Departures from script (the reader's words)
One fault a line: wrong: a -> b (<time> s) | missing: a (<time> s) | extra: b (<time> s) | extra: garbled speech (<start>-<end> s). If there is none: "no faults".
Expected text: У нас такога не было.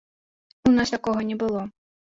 no faults